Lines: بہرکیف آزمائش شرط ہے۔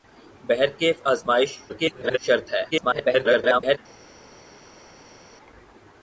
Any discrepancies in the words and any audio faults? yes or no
yes